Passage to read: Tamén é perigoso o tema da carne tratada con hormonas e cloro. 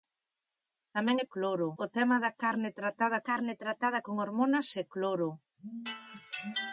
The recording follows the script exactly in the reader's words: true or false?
false